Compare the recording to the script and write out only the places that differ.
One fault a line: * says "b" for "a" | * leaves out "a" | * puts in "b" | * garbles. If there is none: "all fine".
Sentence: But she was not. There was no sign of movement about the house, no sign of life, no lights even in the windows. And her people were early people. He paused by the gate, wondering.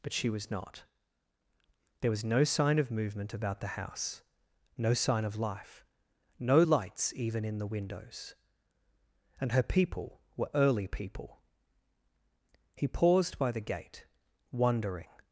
all fine